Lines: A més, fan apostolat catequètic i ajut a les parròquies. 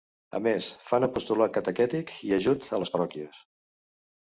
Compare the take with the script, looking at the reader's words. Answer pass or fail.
pass